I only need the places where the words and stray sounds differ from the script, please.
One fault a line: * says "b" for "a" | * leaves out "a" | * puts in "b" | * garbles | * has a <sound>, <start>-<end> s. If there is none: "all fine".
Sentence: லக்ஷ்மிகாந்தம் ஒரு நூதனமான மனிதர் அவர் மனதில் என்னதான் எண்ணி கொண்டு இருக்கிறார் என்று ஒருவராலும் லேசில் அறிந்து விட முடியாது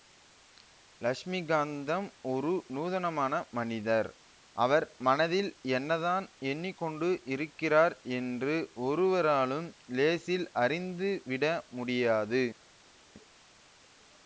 all fine